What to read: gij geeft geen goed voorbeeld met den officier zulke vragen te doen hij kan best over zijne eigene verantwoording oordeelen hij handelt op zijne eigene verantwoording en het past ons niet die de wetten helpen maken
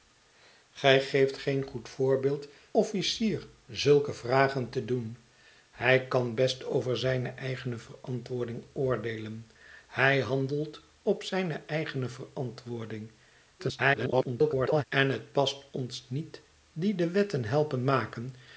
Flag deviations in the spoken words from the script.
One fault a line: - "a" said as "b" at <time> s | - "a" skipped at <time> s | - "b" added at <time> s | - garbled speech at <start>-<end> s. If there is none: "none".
- "met den" skipped at 2.5 s
- garbled speech at 13.6-14.8 s